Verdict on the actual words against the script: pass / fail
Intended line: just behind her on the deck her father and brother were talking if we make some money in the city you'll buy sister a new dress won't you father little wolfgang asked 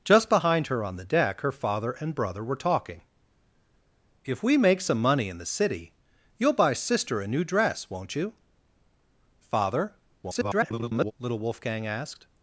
fail